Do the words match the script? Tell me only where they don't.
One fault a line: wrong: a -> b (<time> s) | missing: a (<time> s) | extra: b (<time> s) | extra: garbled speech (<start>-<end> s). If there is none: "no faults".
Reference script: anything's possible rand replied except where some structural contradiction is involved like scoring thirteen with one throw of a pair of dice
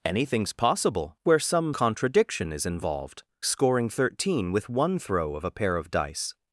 missing: rand replied except (1.2 s)
missing: structural (1.7 s)
missing: like (3.2 s)